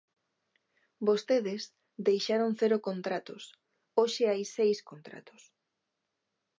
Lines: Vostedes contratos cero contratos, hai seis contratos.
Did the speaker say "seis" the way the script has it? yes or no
yes